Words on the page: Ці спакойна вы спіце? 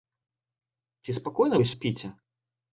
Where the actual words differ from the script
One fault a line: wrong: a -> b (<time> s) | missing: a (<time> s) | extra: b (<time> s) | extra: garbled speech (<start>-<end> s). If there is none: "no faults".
no faults